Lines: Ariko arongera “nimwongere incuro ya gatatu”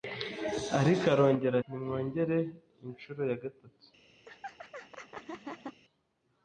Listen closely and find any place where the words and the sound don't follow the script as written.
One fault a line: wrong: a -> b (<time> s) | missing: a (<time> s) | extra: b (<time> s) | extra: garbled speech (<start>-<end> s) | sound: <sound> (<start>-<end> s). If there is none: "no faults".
sound: laugh (4.3-5.8 s)